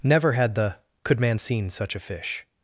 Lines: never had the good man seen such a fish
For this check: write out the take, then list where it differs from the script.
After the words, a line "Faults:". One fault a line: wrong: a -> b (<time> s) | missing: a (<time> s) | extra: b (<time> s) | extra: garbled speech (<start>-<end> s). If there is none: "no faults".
never had the could man seen such a fish
Faults:
wrong: good -> could (1.0 s)